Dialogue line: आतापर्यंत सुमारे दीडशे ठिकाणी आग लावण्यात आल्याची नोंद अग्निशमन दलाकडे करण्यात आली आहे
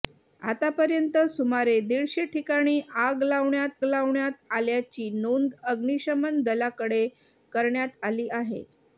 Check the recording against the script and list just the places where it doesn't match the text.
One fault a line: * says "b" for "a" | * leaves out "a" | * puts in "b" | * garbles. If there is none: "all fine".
* puts in "लावण्यात"